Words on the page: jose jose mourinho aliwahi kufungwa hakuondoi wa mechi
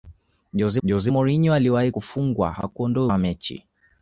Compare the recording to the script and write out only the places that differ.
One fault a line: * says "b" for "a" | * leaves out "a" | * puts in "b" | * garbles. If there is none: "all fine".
all fine